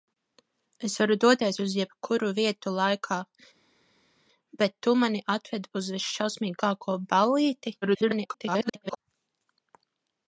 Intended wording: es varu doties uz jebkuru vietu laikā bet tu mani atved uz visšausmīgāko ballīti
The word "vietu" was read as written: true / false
true